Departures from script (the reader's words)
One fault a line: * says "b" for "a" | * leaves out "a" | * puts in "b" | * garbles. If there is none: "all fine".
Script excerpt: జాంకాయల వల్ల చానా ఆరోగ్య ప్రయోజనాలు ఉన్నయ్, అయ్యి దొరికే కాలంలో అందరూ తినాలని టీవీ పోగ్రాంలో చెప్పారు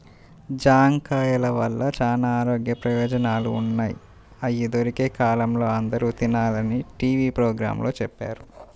all fine